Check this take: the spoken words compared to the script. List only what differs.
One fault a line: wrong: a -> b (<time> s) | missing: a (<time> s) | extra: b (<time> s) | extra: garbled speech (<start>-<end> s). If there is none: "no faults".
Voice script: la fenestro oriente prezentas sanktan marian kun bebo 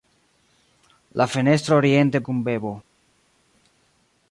missing: prezentas sanktan marian (2.2 s)